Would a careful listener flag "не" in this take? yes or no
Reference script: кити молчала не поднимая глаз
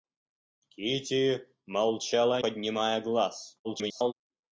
yes